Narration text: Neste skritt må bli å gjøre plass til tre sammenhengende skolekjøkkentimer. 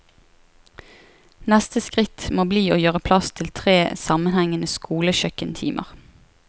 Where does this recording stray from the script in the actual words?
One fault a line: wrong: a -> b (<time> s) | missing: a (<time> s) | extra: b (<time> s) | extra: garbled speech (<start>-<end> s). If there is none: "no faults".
no faults